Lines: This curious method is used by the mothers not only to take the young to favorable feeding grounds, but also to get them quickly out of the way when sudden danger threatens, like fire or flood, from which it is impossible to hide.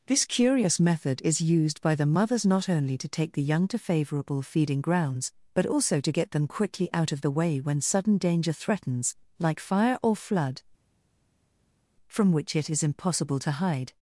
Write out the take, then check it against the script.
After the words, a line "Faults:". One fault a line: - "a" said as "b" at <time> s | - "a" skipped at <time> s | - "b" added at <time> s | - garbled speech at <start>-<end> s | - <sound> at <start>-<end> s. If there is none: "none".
This curious method is used by the mothers not only to take the young to favorable feeding grounds, but also to get them quickly out of the way when sudden danger threatens, like fire or flood, from which it is impossible to hide.
Faults:
none